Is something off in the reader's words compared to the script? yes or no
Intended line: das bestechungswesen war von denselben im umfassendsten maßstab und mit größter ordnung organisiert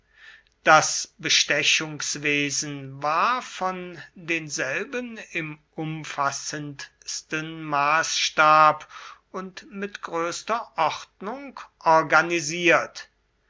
no